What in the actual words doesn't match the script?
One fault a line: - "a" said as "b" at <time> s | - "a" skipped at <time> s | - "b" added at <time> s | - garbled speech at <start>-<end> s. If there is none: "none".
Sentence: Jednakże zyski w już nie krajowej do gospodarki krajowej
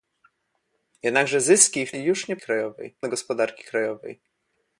none